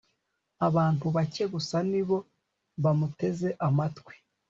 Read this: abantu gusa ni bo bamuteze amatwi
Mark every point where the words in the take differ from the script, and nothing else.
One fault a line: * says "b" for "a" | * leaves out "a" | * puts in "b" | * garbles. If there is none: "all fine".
* puts in "bake"